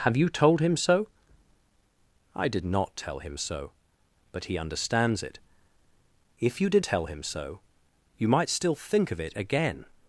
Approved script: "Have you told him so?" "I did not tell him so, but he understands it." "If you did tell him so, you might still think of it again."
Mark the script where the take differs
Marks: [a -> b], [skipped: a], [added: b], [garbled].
"Have you told him so?" "I did not tell him so, but he understands it." "If you did tell him so, you might still think of it again."